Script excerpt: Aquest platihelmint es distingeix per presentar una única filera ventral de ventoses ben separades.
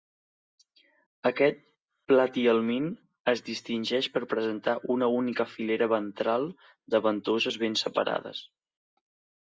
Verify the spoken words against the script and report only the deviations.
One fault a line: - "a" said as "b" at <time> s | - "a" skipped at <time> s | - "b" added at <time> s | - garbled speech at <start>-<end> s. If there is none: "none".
none